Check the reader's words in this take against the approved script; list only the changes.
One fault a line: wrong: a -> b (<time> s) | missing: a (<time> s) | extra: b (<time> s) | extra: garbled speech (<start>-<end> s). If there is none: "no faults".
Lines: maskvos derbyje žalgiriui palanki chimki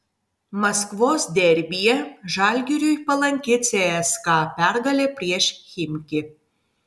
extra: cska pergalė prieš (3.7 s)